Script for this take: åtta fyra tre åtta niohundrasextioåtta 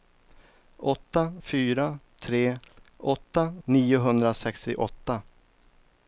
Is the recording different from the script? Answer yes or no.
no